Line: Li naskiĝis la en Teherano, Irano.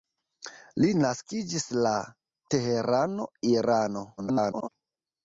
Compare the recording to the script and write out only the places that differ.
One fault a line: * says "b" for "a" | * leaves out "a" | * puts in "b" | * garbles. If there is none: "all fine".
* leaves out "en"
* garbles